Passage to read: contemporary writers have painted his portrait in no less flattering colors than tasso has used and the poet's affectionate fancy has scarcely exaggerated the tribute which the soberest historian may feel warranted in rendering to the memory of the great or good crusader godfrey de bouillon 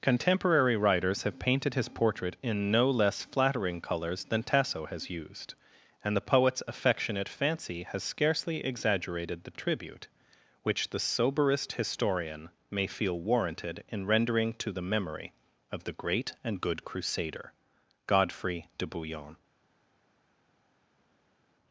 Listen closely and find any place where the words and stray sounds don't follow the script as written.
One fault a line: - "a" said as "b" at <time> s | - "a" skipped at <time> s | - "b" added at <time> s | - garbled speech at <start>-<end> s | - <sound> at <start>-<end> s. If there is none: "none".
- "or" said as "and" at 16.4 s